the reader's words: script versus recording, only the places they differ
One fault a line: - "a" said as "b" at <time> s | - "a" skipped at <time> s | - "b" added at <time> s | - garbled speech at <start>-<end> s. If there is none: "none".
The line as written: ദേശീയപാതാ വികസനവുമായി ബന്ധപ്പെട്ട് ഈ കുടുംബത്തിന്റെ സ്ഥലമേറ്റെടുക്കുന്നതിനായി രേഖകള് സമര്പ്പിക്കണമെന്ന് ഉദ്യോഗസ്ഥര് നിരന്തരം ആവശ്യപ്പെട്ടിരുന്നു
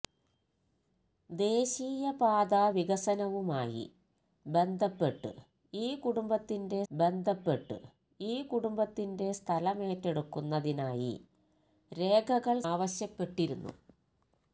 - "സ്ഥലമേറ്റെടുക്കുന്നതിനായി രേഖകള് സമര്പ്പിക്കണമെന്ന് ഉദ്യോഗസ്ഥര് നിരന്തരം" said as "ബന്ധപ്പെട്ട് ഈ കുടുംബത്തിന്റെ സ്ഥലമേറ്റെടുക്കുന്നതിനായി രേഖകള്" at 6.9 s